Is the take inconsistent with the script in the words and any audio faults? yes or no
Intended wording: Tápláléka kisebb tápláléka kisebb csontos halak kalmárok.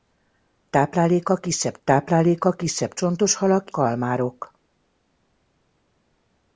no